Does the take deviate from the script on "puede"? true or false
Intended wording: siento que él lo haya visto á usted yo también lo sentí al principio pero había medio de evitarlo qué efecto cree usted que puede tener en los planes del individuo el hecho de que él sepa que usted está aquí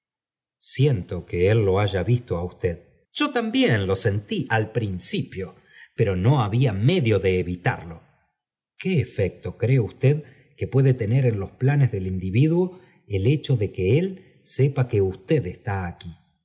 false